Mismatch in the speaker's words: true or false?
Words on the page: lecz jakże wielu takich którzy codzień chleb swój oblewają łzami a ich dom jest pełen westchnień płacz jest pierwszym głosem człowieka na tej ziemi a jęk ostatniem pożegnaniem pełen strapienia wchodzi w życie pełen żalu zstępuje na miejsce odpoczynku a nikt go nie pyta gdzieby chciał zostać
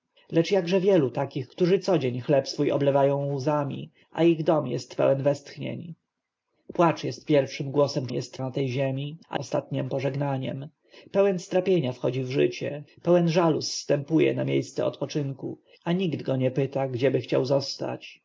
true